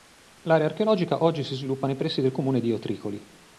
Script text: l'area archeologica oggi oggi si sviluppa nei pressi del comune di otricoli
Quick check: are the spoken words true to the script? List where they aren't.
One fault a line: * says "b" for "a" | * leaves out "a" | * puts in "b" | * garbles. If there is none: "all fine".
* leaves out "oggi"